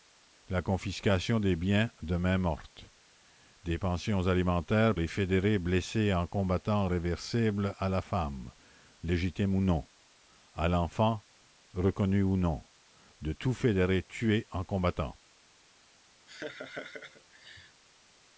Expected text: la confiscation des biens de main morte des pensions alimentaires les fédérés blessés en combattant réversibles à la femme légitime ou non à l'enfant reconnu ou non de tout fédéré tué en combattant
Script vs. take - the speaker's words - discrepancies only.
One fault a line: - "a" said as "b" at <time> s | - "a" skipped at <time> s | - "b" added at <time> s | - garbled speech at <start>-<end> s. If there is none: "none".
none